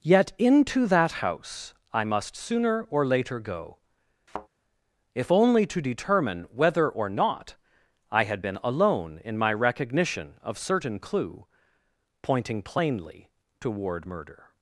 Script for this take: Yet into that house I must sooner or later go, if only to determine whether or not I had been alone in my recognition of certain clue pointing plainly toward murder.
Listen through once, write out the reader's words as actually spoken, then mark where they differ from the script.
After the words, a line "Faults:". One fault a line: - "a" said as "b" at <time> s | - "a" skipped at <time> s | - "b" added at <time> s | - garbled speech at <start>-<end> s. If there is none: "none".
Yet into that house I must sooner or later go, if only to determine whether or not I had been alone in my recognition of certain clue pointing plainly toward murder.
Faults:
none